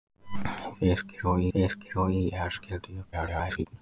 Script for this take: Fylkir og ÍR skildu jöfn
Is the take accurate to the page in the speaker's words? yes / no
no